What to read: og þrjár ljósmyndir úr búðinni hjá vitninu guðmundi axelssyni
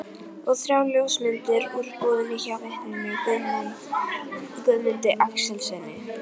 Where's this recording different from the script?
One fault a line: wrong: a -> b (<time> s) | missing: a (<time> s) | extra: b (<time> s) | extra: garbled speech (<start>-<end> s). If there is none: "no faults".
no faults